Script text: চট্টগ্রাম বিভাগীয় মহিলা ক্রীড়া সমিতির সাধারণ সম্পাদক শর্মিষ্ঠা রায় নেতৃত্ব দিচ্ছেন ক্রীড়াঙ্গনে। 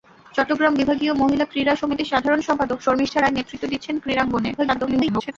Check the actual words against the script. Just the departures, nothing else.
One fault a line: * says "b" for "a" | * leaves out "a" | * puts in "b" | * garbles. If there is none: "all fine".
* garbles